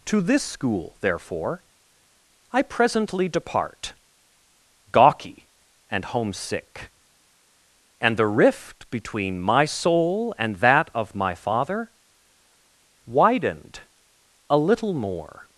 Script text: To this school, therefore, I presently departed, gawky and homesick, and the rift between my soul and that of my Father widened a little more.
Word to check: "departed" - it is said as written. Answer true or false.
false